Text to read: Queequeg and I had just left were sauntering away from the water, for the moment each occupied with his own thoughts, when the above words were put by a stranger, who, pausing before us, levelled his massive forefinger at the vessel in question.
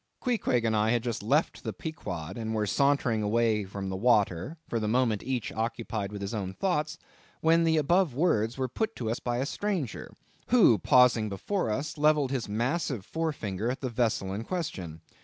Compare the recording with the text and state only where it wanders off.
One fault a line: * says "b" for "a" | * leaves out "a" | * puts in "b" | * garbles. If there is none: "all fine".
* puts in "the Pequod and"
* puts in "to us"